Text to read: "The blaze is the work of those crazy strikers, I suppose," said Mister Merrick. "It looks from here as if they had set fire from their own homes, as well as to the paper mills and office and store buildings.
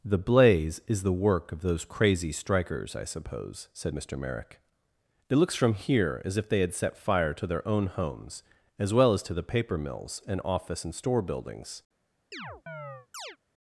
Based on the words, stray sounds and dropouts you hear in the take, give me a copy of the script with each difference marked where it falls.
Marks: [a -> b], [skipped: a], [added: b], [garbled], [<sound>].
"The blaze is the work of those crazy strikers, I suppose," said Mister Merrick. "It looks from here as if they had set fire [from -> to] their own homes, as well as to the paper mills and office and store buildings. [chirp]